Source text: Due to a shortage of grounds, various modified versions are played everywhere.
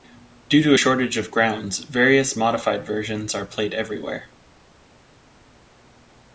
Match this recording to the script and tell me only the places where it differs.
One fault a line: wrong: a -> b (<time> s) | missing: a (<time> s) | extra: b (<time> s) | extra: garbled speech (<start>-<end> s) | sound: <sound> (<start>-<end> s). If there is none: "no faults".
no faults